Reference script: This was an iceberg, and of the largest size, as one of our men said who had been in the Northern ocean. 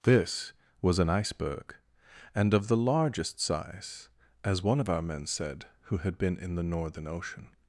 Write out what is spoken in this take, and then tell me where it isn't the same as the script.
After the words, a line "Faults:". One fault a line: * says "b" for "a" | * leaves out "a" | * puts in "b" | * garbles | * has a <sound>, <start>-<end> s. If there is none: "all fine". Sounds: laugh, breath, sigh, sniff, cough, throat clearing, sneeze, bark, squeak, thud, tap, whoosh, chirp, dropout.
This was an iceberg, and of the largest size, as one of our men said who had been in the Northern ocean.
Faults:
all fine